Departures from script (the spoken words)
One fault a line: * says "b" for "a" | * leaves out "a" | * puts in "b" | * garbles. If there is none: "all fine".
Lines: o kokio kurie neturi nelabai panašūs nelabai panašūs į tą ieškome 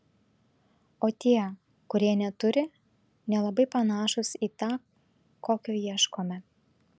* says "tie" for "kokio"
* leaves out "nelabai panašūs"
* puts in "kokio"